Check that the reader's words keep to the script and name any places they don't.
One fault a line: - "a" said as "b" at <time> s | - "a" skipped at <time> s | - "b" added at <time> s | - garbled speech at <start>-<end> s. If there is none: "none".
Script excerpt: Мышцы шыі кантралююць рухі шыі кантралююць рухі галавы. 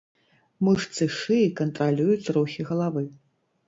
- "шыі кантралююць рухі" skipped at 2.7 s